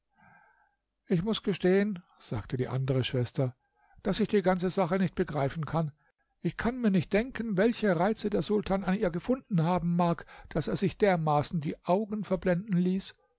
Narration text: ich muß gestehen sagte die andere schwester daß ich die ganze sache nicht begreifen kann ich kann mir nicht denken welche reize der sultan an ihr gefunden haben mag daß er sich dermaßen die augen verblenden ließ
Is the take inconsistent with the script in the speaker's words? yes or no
no